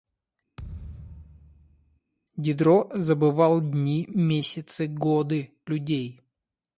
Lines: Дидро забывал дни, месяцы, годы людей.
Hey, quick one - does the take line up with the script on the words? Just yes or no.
yes